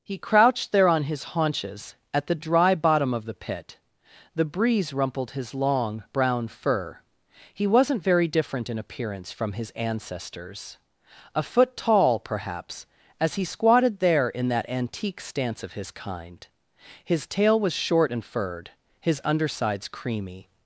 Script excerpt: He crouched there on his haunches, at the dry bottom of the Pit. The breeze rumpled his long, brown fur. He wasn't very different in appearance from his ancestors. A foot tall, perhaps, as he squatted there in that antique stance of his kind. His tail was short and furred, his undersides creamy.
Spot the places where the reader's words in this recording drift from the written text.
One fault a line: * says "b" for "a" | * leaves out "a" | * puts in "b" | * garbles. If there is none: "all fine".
all fine